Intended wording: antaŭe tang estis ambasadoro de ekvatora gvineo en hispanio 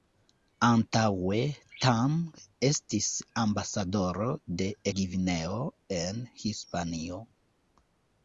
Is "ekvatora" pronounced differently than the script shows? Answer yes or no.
yes